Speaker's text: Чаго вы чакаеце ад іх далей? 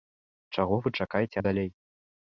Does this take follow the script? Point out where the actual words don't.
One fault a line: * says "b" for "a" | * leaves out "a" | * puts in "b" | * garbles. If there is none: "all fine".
* leaves out "ад"